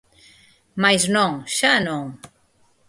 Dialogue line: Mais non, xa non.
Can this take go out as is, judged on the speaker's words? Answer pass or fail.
pass